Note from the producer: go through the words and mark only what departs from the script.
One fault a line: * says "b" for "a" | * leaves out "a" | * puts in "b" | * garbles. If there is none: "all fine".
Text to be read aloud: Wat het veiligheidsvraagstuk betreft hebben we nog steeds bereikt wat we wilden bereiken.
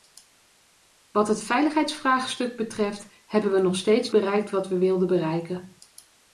all fine